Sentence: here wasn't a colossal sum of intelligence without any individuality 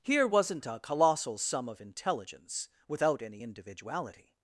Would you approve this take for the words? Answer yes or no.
yes